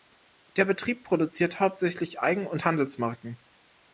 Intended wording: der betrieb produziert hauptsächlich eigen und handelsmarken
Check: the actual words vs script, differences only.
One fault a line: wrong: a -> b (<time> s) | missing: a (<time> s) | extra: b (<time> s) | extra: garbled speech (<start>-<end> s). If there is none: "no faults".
no faults